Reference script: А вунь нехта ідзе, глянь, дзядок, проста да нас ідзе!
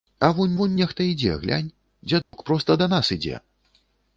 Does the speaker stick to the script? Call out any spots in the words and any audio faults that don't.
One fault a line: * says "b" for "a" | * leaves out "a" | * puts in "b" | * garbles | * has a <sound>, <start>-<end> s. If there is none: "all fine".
* puts in "вунь"
* has a dropout, 2.2-2.3 s